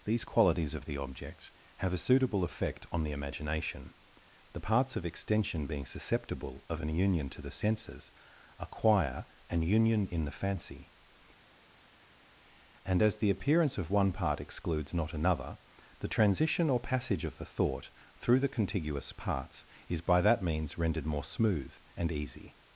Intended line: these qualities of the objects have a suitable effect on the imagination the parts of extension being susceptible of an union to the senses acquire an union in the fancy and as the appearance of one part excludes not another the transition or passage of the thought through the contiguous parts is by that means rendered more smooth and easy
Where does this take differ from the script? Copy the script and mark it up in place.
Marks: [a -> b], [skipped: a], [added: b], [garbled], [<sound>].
these qualities of the objects have a suitable effect on the imagination the parts of extension being susceptible of an union to the senses acquire an union in the fancy and as the appearance of one part excludes not another the transition or passage of the thought through the contiguous parts is by that means rendered more smooth and easy